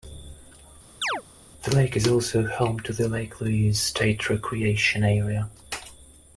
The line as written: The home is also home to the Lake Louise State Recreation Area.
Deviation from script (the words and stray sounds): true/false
true